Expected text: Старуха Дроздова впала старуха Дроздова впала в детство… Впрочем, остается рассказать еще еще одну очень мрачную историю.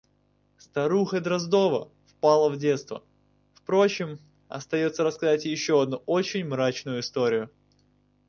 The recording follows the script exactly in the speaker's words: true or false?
false